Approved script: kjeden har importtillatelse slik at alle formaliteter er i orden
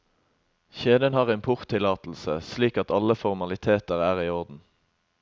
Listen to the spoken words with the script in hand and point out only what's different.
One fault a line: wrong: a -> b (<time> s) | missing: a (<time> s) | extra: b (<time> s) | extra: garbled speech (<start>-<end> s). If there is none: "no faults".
no faults